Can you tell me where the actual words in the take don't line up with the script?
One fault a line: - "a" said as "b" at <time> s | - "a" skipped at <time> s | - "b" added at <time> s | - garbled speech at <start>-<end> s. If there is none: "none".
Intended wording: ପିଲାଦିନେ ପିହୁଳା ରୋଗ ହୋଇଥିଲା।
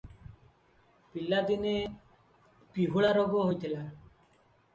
none